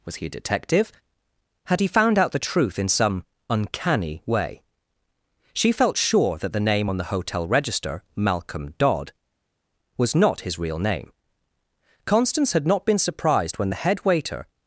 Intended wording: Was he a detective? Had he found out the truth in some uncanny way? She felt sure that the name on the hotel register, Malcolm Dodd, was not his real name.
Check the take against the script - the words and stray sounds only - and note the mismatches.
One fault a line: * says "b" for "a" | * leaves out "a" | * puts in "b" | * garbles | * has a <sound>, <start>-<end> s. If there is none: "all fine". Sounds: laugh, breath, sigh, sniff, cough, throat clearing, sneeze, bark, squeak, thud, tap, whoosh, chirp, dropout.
* puts in "Constance had not been surprised when the head waiter"